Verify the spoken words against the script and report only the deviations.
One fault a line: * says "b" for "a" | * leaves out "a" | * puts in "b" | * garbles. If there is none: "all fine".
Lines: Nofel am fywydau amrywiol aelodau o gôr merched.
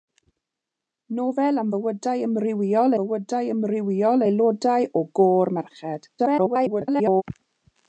* puts in "fywydau amrywiol"
* garbles